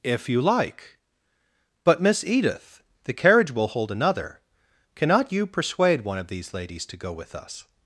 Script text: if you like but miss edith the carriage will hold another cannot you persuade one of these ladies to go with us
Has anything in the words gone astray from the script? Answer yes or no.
no